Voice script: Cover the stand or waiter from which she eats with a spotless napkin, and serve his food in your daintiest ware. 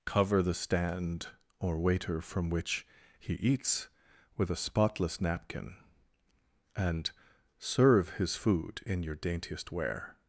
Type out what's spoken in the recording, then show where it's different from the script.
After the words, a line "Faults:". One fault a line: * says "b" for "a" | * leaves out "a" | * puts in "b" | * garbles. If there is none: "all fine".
Cover the stand or waiter from which he eats with a spotless napkin, and serve his food in your daintiest ware.
Faults:
* says "he" for "she"